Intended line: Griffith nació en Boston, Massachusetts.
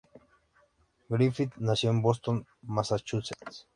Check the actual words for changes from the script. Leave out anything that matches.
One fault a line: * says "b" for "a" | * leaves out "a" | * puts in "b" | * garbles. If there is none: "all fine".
all fine